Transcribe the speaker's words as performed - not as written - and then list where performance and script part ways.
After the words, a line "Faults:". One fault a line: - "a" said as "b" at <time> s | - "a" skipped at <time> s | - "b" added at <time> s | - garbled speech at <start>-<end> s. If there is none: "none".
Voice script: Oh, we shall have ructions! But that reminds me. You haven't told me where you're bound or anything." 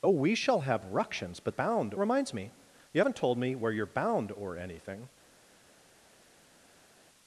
Oh, we shall have ructions! But bound reminds me. You haven't told me where you're bound or anything."
Faults:
- "that" said as "bound" at 1.5 s